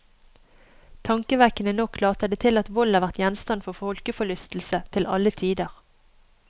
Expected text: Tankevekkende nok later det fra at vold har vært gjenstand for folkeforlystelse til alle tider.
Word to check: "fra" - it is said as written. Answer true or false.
false